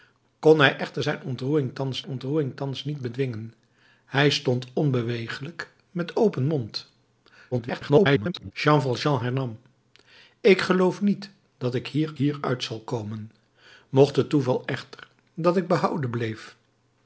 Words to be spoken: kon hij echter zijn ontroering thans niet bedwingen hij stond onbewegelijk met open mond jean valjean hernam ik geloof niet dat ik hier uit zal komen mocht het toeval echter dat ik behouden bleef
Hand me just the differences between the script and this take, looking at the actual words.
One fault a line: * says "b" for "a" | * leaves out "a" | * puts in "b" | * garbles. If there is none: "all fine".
* puts in "ontroering thans"
* garbles
* puts in "hier"